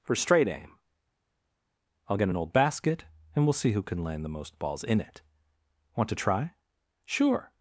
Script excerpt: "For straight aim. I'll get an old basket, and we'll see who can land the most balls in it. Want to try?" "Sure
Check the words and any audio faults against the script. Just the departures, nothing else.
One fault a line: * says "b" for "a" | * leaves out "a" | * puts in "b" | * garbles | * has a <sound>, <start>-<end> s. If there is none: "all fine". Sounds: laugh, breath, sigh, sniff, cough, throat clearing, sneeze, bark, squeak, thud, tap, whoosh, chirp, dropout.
all fine